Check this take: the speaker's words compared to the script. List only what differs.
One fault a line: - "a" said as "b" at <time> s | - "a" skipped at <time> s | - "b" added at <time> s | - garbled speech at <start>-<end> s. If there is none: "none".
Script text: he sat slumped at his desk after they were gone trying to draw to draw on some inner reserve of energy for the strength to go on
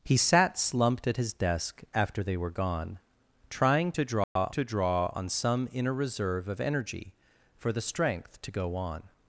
none